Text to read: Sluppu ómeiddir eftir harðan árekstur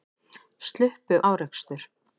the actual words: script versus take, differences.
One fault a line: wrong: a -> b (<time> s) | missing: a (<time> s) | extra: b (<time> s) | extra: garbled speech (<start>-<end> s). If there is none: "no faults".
missing: ómeiddir eftir harðan (1.2 s)